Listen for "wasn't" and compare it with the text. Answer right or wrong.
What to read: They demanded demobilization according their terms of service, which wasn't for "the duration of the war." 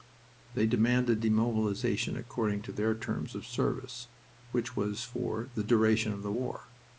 wrong